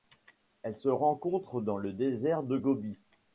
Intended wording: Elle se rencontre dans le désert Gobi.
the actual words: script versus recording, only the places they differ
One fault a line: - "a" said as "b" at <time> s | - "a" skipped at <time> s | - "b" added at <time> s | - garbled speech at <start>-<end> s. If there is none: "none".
- "de" added at 2.4 s